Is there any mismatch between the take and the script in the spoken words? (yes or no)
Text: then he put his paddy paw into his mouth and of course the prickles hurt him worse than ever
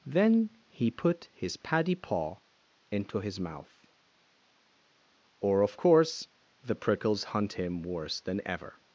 yes